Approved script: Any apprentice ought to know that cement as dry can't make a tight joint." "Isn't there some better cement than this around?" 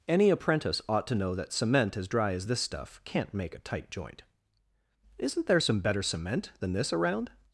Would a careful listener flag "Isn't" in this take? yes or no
no